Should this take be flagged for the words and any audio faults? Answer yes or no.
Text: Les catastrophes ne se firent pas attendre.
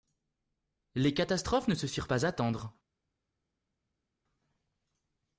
no